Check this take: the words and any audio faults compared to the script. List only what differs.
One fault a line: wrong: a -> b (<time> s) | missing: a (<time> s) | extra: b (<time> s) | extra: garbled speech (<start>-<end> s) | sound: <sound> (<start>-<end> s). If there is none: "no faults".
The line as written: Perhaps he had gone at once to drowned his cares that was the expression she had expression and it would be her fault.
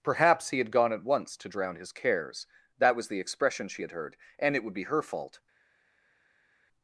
wrong: drowned -> drown (1.5 s)
wrong: expression -> heard (3.9 s)